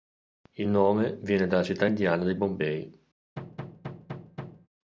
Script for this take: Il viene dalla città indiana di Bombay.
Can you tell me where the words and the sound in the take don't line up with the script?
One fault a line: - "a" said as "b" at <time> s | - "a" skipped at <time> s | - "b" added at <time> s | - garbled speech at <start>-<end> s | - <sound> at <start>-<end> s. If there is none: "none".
- "nome" added at 0.7 s
- thud at 3.4-4.7 s